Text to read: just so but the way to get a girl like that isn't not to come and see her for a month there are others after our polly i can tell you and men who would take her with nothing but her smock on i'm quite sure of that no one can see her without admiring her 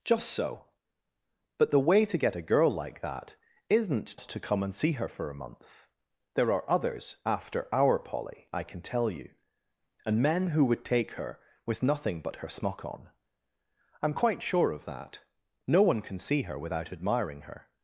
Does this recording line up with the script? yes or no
no